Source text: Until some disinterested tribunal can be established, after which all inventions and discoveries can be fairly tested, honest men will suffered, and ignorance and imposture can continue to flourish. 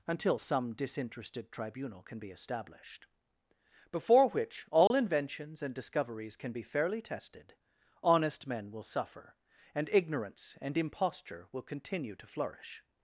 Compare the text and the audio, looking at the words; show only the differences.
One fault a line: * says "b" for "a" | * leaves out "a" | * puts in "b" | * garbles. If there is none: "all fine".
* says "before" for "after"
* says "suffer" for "suffered"
* says "will" for "can"